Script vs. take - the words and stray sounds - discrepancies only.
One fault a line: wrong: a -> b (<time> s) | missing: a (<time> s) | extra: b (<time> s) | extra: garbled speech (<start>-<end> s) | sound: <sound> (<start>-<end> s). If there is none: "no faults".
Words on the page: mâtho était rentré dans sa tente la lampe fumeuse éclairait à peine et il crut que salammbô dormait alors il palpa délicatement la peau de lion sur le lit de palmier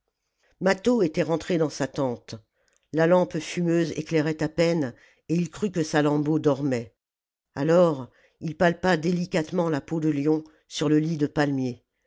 no faults